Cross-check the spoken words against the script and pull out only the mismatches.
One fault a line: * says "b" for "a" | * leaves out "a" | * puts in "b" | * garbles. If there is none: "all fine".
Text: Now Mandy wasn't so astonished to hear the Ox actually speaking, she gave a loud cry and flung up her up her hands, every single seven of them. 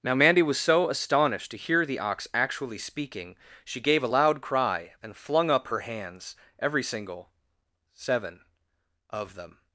* says "was" for "wasn't"
* leaves out "up her"